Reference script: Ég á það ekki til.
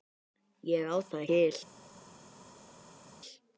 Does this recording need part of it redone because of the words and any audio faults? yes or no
yes